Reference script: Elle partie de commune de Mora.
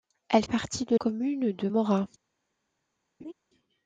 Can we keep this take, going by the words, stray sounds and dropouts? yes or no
no